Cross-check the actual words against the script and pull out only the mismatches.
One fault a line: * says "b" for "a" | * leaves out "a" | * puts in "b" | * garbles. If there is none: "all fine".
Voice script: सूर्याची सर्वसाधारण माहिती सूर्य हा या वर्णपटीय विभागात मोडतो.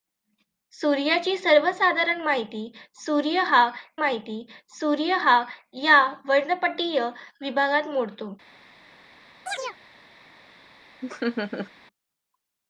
* puts in "माहिती सूर्य हा"